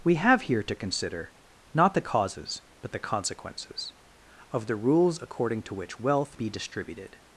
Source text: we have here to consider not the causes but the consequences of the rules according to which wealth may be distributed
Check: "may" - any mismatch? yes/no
yes